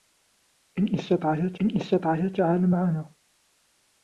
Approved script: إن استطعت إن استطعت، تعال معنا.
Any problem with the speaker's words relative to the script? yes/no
no